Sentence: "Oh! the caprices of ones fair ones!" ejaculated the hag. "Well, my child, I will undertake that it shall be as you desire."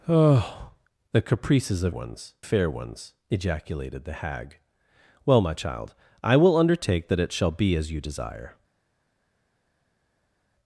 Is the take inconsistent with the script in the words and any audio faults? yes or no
no